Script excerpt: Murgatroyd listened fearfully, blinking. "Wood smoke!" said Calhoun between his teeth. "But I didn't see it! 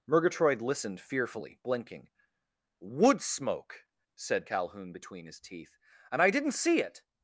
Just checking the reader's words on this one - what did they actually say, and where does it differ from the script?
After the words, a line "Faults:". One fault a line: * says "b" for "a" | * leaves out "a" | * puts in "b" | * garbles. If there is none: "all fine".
Murgatroyd listened fearfully, blinking. "Wood smoke!" said Calhoun between his teeth. "And I didn't see it!
Faults:
* says "And" for "But"